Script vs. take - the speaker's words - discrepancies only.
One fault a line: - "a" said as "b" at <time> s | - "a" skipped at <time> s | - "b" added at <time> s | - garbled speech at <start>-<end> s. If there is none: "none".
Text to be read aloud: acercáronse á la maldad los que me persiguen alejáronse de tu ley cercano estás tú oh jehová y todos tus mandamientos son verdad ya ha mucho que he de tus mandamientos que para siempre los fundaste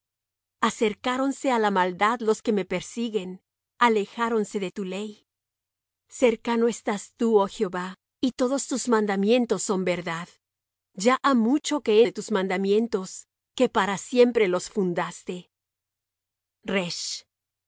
none